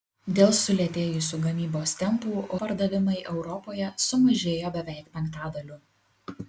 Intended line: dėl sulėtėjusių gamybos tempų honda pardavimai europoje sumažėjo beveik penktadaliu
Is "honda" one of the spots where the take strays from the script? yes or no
yes